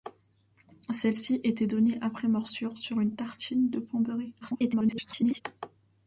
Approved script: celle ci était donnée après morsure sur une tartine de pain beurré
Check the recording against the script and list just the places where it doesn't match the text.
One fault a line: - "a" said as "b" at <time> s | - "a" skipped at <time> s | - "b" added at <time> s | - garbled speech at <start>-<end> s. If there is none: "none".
- garbled speech at 4.4-5.4 s